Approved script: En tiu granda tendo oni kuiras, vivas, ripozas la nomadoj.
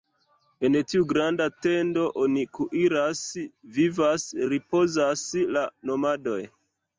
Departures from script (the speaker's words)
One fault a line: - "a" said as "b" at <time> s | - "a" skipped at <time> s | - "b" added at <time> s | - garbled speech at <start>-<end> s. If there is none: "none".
none